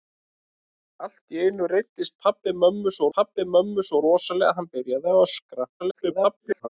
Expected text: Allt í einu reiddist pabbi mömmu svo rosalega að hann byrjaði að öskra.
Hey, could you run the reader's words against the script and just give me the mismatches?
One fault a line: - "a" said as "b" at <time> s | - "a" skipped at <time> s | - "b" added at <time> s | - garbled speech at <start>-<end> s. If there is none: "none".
- "pabbi mömmu svo" added at 3.2 s
- garbled speech at 5.8-6.7 s